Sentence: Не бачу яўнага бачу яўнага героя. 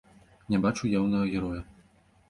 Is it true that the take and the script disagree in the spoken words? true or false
true